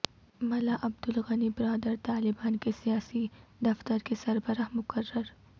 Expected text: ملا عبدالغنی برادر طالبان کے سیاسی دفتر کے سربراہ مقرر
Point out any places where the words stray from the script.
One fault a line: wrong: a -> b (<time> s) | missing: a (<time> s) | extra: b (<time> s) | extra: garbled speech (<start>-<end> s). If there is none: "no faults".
no faults